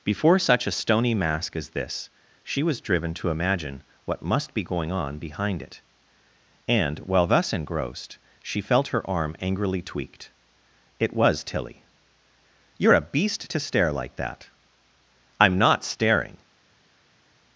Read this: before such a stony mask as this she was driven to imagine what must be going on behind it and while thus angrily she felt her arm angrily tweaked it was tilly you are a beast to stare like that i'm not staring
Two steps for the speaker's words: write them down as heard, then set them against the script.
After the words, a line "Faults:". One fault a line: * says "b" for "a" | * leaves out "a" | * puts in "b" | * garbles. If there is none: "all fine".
before such a stony mask as this she was driven to imagine what must be going on behind it and while thus engrossed she felt her arm angrily tweaked it was tilly you are a beast to stare like that i'm not staring
Faults:
* says "engrossed" for "angrily"